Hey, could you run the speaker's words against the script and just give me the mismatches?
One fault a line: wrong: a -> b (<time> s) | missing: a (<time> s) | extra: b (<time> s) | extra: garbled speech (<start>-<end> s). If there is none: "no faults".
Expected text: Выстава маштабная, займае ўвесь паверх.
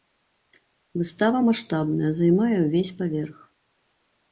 no faults